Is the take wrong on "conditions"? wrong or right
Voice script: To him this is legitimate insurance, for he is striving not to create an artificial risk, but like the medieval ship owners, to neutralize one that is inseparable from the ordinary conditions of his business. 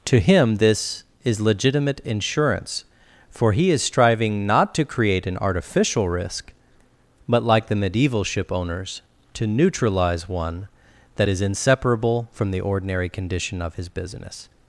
wrong